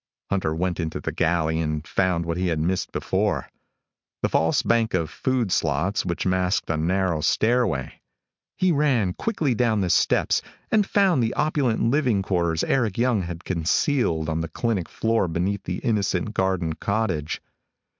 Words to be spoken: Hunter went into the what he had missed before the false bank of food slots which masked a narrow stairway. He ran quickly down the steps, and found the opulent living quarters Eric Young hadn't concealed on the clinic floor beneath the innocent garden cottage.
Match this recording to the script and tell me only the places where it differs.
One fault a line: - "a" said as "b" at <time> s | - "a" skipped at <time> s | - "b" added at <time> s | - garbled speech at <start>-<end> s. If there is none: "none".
- "galley and found" added at 1.1 s
- "hadn't" said as "had" at 13.2 s